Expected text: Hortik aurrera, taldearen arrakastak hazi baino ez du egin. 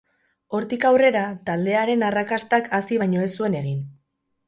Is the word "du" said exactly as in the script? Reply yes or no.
no